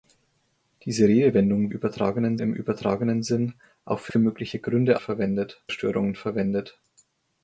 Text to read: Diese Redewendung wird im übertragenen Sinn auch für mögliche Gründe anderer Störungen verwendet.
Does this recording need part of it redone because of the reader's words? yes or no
yes